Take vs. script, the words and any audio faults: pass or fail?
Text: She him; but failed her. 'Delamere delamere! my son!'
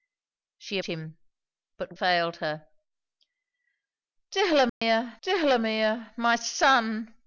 fail